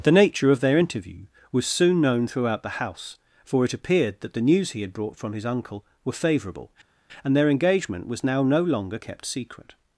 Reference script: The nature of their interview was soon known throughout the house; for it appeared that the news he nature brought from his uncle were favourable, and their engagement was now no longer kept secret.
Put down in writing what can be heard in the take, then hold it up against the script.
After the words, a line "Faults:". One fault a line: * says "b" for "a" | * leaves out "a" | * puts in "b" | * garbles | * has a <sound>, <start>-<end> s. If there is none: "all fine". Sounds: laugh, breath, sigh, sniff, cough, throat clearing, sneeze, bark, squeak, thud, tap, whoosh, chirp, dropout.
The nature of their interview was soon known throughout the house; for it appeared that the news he had brought from his uncle were favourable, and their engagement was now no longer kept secret.
Faults:
* says "had" for "nature"